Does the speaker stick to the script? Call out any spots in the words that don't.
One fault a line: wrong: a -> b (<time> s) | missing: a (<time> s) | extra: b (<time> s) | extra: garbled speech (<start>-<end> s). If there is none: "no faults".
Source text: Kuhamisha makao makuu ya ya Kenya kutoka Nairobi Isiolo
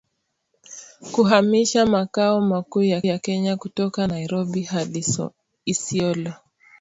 no faults